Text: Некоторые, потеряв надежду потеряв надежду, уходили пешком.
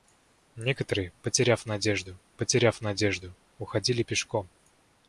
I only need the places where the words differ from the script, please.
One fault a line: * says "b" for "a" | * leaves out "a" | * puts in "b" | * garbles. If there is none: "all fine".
all fine